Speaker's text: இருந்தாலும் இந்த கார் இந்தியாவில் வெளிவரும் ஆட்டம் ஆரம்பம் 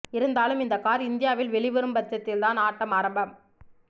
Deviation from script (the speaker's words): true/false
true